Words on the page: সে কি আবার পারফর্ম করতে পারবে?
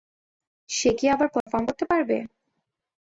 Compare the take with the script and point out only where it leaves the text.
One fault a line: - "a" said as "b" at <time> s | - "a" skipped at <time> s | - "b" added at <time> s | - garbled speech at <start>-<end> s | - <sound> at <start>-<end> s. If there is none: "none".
- dropout at 1.4-1.5 s